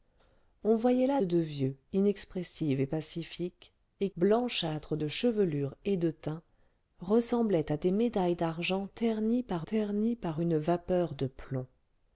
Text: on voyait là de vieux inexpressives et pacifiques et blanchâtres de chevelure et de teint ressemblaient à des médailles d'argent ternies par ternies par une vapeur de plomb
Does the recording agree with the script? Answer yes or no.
yes